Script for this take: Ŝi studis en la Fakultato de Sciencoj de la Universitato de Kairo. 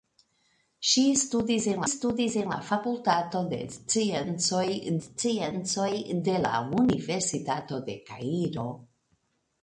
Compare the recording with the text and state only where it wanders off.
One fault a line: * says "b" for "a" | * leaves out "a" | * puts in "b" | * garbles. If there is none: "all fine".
* puts in "studis en"
* puts in "Sciencoj"